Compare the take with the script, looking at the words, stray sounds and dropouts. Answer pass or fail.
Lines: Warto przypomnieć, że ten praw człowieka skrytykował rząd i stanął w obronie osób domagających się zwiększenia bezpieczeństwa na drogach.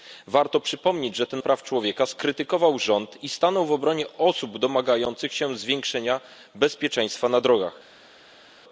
pass